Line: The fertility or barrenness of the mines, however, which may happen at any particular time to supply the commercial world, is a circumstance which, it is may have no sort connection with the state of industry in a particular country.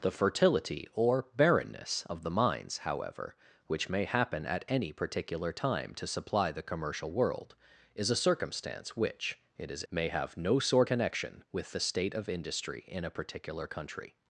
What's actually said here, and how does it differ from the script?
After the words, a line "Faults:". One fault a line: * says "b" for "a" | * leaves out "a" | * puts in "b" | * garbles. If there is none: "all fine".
The fertility or barrenness of the mines, however, which may happen at any particular time to supply the commercial world, is a circumstance which, it is may have no sort connection with the state of industry in a particular country.
Faults:
all fine